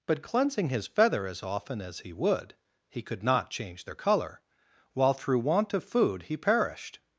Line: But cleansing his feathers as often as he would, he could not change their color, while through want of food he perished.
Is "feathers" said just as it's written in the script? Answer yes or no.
no